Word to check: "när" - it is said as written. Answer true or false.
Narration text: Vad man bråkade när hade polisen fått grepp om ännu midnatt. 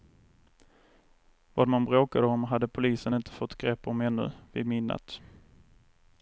false